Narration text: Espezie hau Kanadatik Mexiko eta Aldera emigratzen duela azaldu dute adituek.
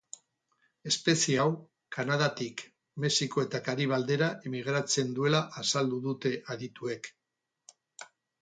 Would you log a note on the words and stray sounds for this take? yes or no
yes